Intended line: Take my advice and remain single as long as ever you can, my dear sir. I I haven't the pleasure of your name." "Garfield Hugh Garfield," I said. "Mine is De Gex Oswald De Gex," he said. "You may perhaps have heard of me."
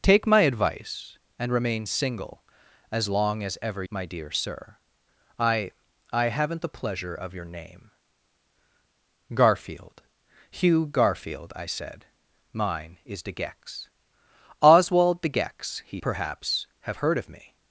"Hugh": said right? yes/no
yes